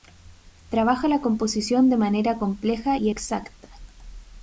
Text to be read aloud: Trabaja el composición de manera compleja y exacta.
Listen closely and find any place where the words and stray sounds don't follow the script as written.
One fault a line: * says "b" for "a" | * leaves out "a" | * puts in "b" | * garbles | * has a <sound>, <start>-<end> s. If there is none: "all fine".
* says "la" for "el"